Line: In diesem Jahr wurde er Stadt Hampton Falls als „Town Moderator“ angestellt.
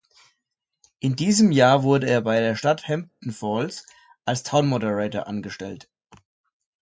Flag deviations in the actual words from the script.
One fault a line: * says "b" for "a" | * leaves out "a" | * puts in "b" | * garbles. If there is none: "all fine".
* puts in "bei der"